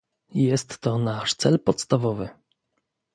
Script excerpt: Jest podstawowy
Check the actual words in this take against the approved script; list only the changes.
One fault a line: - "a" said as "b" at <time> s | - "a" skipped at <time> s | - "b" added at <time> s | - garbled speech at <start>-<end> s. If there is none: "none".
- "to nasz cel" added at 0.8 s